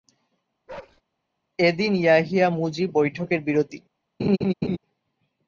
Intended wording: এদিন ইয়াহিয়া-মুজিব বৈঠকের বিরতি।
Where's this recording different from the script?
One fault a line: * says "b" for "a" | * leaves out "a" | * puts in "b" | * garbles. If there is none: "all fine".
all fine